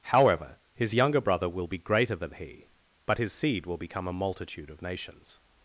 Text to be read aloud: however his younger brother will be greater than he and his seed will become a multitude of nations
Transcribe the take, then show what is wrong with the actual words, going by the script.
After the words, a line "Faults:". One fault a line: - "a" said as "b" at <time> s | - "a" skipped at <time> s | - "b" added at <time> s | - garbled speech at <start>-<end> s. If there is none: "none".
however his younger brother will be greater than he but his seed will become a multitude of nations
Faults:
- "and" said as "but" at 3.0 s